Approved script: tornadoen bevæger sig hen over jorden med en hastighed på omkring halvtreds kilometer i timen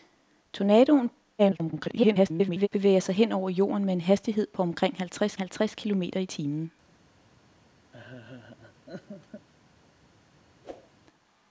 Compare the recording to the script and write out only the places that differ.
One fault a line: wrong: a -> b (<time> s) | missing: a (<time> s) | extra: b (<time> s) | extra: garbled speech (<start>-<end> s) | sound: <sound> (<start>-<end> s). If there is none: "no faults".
extra: garbled speech (1.4-2.7 s)
extra: halvtreds (5.4 s)
sound: laugh (7.9-9.5 s)
sound: whoosh (10.6-10.9 s)